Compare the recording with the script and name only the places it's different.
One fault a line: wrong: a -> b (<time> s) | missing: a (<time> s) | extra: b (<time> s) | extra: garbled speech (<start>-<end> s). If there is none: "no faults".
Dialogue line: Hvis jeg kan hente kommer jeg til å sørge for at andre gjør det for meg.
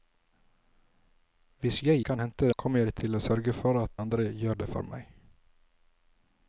no faults